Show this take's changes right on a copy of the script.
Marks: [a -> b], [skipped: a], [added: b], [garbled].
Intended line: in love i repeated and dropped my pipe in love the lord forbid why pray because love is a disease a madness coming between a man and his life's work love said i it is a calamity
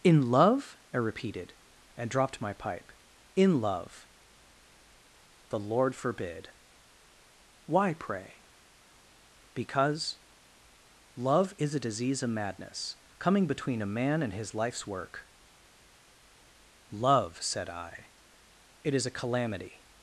in love i repeated and dropped my pipe in love the lord forbid why pray because love is a disease [a -> of] madness coming between a man and his life's work love said i it is a calamity